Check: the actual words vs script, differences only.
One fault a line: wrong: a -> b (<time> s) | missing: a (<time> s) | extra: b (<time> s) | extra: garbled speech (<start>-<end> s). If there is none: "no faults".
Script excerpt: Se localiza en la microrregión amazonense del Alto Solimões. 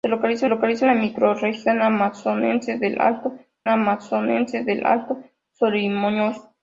extra: localiza (0.5 s)
extra: amazonense del Alto (3.7 s)